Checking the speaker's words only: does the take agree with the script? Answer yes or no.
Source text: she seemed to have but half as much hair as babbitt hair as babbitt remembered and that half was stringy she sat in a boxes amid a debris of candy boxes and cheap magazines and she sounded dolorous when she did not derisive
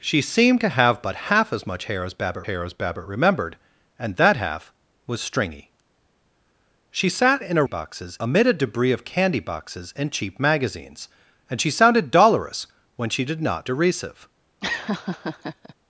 yes